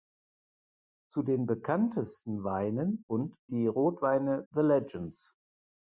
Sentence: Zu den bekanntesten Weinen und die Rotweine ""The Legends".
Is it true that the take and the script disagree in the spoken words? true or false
false